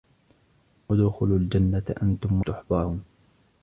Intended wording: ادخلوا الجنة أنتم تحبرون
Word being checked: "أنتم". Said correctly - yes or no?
yes